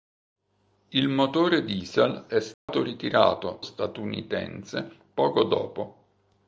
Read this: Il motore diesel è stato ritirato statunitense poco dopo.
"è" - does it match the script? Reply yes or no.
yes